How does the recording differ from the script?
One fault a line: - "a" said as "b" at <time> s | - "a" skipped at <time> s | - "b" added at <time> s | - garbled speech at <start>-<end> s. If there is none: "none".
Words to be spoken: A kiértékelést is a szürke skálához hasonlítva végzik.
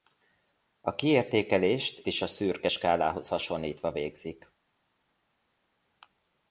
none